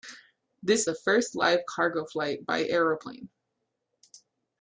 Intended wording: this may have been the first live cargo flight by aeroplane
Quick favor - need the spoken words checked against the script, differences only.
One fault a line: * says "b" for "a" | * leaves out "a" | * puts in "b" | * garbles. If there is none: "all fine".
* leaves out "may have been"